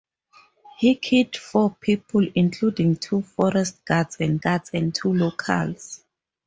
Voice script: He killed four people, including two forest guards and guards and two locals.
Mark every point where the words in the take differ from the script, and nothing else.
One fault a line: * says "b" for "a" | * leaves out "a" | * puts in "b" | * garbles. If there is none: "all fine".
all fine